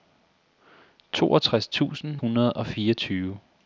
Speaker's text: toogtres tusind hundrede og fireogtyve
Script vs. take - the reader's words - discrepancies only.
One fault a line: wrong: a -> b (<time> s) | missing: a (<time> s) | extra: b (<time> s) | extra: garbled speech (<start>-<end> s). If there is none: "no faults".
no faults